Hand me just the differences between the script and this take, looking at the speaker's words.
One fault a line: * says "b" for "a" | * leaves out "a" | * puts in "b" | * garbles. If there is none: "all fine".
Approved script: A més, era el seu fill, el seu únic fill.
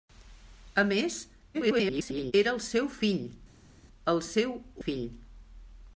* garbles
* leaves out "únic"